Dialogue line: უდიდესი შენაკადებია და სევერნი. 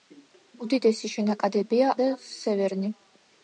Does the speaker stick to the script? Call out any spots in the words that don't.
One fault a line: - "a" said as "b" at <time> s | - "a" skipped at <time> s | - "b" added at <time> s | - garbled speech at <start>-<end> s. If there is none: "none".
none